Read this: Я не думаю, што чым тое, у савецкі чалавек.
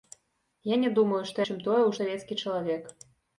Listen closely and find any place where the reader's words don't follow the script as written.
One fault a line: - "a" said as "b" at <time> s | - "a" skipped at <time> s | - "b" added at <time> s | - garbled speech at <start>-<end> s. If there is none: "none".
none